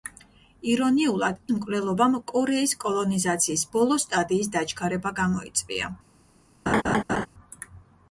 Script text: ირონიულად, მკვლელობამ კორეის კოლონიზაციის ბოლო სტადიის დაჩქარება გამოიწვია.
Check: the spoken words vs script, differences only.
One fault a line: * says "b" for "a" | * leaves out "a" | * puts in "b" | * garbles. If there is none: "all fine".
all fine